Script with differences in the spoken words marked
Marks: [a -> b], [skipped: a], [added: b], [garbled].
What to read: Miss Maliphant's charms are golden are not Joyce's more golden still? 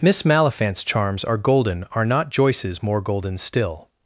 Miss Maliphant's charms are golden are not Joyce's more golden still?